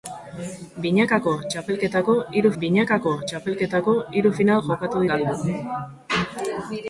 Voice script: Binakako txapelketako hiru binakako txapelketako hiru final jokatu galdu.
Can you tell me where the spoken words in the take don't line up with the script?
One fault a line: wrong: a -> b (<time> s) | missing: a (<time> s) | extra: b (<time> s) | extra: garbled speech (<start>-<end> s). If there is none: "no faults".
no faults